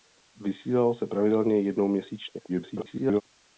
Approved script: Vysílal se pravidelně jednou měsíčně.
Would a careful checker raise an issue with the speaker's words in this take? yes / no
yes